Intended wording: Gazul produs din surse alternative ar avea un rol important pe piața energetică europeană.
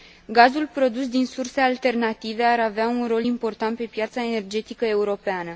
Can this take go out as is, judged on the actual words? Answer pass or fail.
pass